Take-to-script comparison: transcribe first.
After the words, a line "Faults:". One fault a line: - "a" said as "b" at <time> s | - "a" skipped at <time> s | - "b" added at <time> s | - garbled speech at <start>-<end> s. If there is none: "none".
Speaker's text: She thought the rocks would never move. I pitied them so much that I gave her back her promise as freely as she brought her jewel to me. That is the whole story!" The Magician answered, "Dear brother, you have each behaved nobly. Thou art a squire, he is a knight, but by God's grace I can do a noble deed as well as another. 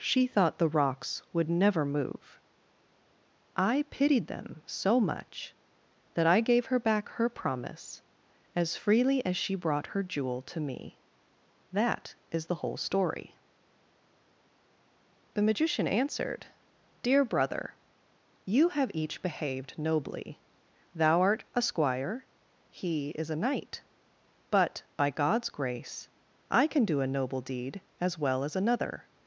She thought the rocks would never move. I pitied them so much that I gave her back her promise as freely as she brought her jewel to me. That is the whole story!" The Magician answered, "Dear brother, you have each behaved nobly. Thou art a squire, he is a knight, but by God's grace I can do a noble deed as well as another.
Faults:
none